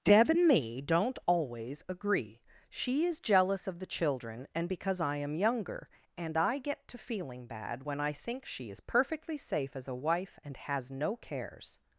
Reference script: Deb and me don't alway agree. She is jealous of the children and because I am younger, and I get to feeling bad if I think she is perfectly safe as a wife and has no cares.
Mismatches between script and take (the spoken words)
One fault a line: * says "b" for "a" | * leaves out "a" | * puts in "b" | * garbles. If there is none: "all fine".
* says "always" for "alway"
* says "when" for "if"